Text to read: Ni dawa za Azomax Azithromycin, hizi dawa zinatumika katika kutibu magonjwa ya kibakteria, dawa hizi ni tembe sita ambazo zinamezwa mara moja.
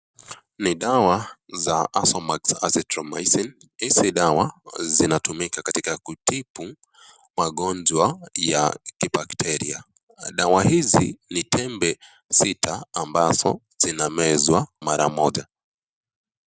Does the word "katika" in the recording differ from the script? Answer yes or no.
no